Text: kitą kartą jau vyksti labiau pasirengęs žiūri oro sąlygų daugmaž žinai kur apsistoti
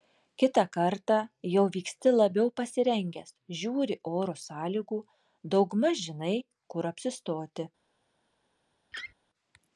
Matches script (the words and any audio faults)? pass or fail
fail